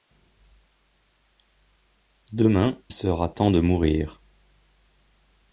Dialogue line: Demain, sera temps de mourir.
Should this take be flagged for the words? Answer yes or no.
no